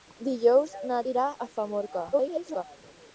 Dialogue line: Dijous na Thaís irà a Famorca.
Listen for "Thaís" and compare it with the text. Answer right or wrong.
wrong